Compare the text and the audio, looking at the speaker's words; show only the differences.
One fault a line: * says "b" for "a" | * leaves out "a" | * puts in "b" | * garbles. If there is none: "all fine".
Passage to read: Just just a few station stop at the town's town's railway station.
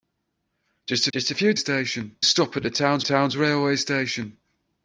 all fine